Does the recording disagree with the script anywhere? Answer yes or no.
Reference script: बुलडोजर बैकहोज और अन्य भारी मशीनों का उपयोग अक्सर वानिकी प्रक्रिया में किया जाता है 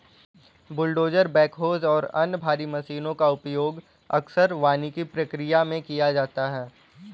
no